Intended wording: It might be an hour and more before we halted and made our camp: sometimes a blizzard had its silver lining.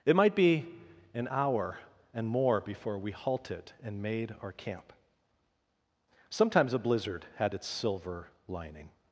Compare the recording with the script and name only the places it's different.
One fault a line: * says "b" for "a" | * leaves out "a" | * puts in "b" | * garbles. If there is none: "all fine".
all fine